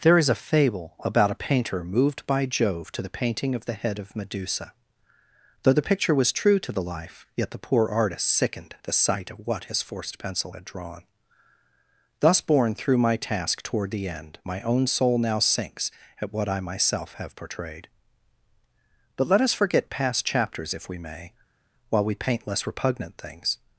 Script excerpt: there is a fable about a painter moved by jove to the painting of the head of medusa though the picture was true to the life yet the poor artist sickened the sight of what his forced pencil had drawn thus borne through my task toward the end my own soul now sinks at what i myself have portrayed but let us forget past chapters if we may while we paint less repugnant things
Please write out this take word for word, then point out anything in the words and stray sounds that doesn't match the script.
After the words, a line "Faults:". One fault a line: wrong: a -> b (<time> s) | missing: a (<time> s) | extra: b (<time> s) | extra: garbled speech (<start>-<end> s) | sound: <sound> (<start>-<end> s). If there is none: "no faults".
there is a fable about a painter moved by jove to the painting of the head of medusa though the picture was true to the life yet the poor artist sickened the sight of what his forced pencil had drawn thus borne through my task toward the end my own soul now sinks at what i myself have portrayed but let us forget past chapters if we may while we paint less repugnant things
Faults:
no faults